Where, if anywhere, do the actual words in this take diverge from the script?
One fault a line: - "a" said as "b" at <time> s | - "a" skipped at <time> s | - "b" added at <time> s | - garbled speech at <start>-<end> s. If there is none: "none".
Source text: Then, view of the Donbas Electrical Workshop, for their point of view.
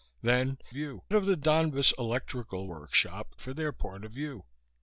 none